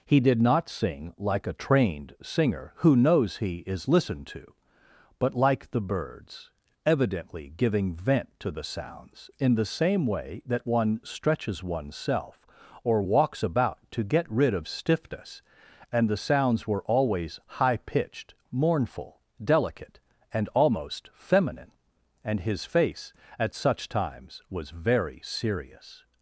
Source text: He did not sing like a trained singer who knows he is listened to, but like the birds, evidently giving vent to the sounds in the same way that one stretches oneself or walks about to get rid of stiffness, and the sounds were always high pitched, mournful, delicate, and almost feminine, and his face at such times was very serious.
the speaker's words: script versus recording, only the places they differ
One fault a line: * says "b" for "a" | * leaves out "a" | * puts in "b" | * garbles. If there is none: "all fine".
all fine